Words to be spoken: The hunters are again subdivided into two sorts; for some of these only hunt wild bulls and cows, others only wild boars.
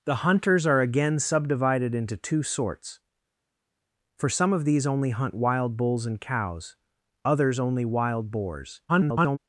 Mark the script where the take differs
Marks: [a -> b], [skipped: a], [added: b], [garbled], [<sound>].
The hunters are again subdivided into two sorts; for some of these only hunt wild bulls and cows, others only wild boars. [garbled]